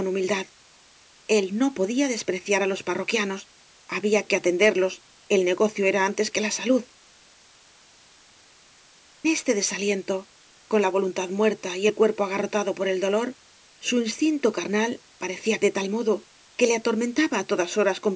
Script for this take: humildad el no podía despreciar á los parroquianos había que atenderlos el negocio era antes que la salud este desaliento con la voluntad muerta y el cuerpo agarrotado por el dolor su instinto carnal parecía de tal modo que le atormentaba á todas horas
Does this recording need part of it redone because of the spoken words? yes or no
no